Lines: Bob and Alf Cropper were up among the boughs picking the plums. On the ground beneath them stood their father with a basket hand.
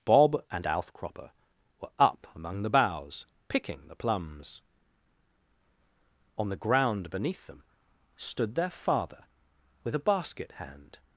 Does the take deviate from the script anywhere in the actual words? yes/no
no